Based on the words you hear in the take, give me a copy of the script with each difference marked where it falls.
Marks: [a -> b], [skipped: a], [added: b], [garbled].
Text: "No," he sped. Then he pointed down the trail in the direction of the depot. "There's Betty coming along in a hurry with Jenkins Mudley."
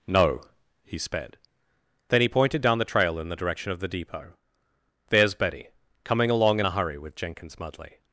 "No," he sped. Then he pointed down the trail in the direction of the depot. "There's Betty coming along in a hurry with Jenkins Mudley."